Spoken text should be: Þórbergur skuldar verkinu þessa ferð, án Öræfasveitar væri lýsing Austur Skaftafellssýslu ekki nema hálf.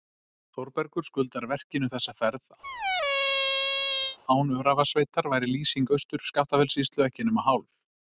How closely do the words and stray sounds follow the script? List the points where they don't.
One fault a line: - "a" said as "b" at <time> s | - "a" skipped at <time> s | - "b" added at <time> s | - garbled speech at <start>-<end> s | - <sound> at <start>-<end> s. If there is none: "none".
- squeak at 2.6-4.2 s